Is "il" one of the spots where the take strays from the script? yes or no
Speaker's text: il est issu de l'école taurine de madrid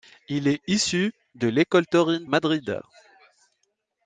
no